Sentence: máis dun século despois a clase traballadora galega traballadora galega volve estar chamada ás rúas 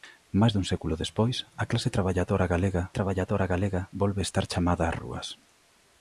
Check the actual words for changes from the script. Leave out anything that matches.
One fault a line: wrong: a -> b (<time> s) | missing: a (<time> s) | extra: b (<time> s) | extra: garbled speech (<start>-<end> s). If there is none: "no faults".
no faults